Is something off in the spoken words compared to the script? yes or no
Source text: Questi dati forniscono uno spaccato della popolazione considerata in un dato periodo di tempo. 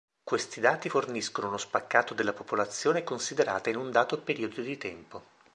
no